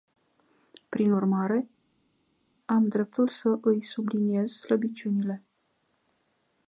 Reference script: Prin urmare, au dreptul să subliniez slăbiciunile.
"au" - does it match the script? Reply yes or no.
no